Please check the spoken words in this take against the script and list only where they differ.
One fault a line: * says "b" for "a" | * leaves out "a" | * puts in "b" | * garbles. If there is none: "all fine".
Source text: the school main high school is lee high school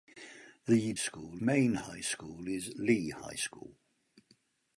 all fine